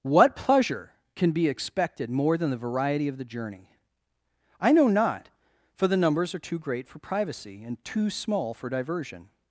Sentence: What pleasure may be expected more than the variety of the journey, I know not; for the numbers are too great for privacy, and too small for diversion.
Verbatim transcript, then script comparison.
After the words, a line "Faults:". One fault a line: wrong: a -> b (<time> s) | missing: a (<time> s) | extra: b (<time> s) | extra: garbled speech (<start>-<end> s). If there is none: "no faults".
What pleasure can be expected more than the variety of the journey, I know not; for the numbers are too great for privacy, and too small for diversion.
Faults:
wrong: may -> can (1.1 s)